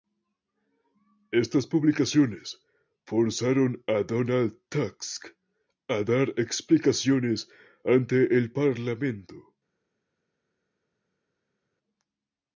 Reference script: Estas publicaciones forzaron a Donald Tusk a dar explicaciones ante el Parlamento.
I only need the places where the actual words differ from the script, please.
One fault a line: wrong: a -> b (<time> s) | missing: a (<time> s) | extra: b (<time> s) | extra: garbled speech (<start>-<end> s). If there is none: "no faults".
no faults